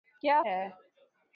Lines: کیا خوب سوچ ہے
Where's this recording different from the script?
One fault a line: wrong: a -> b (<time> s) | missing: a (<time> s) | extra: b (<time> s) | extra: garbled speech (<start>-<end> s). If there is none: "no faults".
missing: خوب سوچ (0.4 s)